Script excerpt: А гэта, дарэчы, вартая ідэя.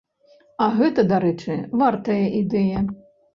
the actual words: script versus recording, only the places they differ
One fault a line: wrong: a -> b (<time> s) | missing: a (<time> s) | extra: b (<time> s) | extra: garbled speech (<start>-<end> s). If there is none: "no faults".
no faults